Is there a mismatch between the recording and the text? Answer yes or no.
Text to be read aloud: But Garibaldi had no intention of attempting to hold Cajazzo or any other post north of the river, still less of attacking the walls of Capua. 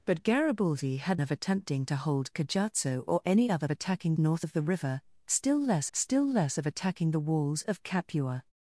yes